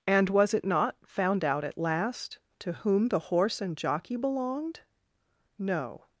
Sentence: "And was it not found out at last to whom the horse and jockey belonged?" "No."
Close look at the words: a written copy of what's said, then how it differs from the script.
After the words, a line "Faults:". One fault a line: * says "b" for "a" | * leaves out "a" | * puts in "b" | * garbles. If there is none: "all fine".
"And was it not found out at last to whom the horse and jockey belonged?" "No."
Faults:
all fine